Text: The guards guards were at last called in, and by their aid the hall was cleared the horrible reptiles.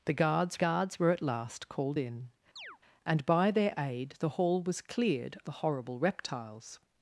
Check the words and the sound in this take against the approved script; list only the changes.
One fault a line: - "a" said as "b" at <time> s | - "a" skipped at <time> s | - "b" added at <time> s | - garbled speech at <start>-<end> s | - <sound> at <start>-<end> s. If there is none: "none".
- chirp at 2.6-2.8 s